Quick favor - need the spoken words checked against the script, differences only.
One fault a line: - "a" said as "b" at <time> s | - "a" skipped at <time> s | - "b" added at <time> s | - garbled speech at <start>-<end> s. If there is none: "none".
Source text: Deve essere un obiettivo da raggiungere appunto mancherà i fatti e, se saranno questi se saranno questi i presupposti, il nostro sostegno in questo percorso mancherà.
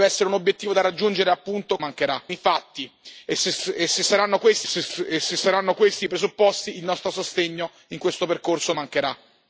none